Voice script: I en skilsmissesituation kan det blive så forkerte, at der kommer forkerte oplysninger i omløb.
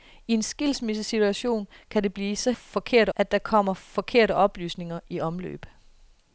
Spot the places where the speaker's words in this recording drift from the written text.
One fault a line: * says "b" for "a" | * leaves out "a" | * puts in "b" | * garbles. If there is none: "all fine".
all fine